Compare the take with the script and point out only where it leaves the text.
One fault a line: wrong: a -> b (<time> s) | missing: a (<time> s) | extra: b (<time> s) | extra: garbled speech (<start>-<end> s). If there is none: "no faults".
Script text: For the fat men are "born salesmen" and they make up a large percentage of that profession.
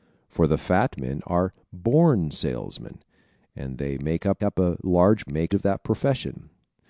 extra: up (4.4 s)
wrong: percentage -> make (5.3 s)